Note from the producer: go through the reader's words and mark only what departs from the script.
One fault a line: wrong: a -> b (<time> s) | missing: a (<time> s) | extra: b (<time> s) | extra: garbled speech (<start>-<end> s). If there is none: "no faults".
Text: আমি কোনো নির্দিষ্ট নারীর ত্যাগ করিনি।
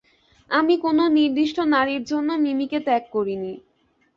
extra: জন্য মিমিকে (2.0 s)